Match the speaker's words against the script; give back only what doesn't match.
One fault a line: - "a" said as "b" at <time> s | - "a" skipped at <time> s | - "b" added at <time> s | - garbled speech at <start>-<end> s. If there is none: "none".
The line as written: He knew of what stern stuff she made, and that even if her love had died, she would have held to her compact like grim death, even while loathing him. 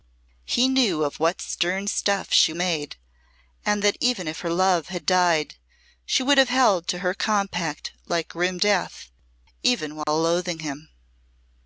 none